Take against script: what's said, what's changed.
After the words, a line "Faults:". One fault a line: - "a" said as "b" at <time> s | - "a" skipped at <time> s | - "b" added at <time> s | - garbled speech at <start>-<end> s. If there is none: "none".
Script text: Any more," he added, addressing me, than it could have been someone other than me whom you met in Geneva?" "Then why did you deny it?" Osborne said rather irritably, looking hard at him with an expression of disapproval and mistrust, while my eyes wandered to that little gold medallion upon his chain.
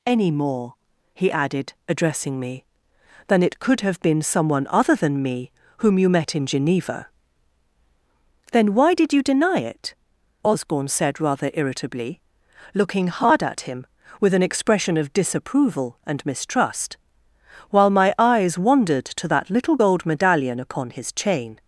Any more," he added, addressing me, than it could have been someone other than me whom you met in Geneva?" "Then why did you deny it?" Osborne said rather irritably, looking hard at him with an expression of disapproval and mistrust, while my eyes wandered to that little gold medallion upon his chain.
Faults:
none